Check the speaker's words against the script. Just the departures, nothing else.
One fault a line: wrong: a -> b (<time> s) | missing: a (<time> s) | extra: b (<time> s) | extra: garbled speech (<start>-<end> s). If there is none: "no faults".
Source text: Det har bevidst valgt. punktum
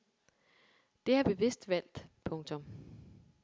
no faults